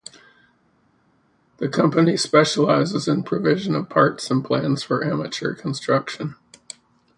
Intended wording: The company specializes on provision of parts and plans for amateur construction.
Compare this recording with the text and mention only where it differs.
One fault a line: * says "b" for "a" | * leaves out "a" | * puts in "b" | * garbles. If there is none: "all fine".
* says "in" for "on"